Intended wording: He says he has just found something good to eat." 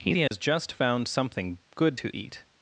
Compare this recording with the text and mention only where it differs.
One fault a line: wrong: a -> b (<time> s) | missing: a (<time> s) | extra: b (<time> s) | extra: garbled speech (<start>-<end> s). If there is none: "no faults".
missing: says (0.1 s)